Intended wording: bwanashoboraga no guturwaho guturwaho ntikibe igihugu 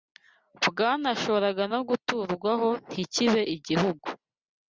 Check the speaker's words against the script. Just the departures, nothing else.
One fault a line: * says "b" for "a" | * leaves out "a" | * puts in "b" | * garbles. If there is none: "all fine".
* leaves out "guturwaho"